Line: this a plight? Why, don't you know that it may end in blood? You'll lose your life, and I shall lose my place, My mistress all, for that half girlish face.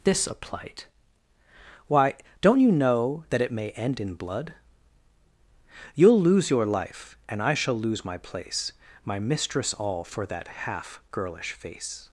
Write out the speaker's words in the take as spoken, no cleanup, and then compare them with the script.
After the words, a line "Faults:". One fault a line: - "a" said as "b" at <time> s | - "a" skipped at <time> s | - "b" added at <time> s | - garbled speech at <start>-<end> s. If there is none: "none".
this a plight? Why, don't you know that it may end in blood? You'll lose your life, and I shall lose my place, My mistress all, for that half girlish face.
Faults:
none